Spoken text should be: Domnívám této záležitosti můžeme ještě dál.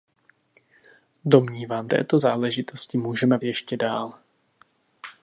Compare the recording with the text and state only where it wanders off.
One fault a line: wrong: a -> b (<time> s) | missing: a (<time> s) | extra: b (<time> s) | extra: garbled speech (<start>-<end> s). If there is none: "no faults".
no faults